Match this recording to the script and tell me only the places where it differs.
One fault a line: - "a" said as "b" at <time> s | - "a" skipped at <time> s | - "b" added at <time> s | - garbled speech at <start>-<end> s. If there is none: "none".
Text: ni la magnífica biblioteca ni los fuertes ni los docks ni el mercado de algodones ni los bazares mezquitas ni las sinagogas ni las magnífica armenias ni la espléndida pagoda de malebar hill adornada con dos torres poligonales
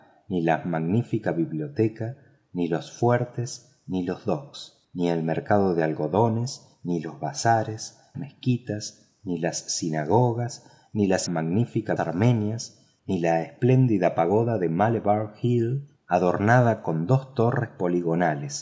none